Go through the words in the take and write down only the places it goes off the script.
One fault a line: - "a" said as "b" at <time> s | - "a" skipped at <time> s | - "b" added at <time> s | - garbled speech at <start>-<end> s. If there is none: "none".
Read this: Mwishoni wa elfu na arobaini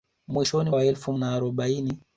none